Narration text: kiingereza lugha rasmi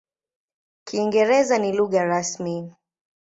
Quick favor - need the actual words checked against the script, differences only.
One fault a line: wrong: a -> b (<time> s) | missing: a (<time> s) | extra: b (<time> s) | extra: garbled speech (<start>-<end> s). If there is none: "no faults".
extra: ni (1.6 s)